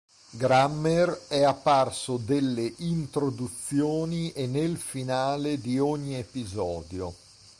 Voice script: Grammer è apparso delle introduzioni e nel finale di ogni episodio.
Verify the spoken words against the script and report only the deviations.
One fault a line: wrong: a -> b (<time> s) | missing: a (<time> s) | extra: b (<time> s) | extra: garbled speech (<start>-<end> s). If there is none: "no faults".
no faults